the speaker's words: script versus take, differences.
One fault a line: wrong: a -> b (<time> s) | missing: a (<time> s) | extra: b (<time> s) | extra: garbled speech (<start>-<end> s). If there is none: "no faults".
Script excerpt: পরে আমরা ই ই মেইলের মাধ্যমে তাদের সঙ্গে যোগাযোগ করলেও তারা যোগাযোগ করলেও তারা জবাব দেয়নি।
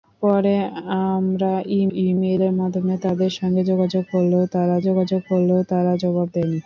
no faults